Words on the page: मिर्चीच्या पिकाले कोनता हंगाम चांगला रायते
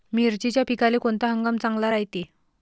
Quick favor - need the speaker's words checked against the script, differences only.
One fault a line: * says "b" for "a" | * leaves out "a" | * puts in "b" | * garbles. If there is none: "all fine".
all fine